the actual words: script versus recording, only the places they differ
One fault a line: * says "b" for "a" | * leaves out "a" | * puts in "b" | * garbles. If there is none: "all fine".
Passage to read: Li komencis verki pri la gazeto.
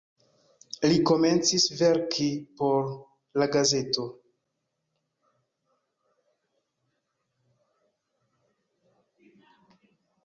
* says "por" for "pri"